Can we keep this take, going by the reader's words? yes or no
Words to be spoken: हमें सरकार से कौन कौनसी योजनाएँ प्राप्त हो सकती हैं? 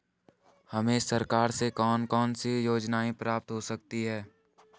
yes